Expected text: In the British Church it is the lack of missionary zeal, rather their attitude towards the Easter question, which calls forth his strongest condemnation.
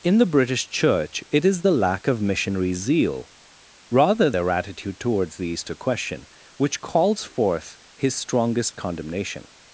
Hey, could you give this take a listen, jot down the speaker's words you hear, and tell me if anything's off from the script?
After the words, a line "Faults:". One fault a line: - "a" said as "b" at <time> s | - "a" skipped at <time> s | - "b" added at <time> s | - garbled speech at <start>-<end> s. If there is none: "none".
In the British Church it is the lack of missionary zeal, rather their attitude towards the Easter question, which calls forth his strongest condemnation.
Faults:
none